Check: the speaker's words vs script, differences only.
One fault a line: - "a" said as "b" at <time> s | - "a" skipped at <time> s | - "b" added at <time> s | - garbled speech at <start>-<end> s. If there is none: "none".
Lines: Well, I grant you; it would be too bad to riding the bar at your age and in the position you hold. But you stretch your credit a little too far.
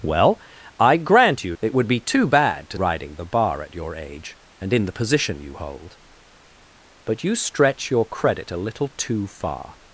none